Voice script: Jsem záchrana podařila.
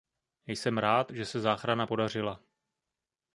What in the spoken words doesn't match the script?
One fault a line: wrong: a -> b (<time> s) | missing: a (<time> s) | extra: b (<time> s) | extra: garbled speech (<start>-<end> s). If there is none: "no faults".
extra: rád že se (0.8 s)